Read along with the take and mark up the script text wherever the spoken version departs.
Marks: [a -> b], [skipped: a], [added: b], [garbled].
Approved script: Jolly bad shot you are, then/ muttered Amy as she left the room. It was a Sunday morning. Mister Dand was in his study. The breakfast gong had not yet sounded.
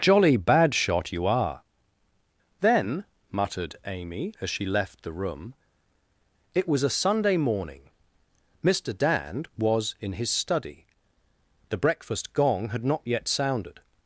Jolly bad shot you are, then/ muttered Amy as she left the room. It was a Sunday morning. Mister Dand was in his study. The breakfast gong had not yet sounded.